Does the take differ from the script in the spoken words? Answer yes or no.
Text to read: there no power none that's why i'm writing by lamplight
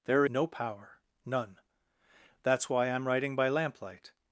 no